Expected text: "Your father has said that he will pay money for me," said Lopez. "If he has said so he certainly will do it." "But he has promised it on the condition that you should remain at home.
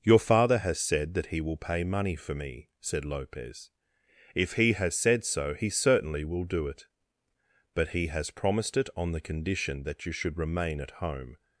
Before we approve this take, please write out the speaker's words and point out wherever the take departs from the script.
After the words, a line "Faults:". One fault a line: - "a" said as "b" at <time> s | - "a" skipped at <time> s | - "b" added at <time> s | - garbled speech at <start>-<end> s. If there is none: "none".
"Your father has said that he will pay money for me," said Lopez. "If he has said so he certainly will do it." "But he has promised it on the condition that you should remain at home.
Faults:
none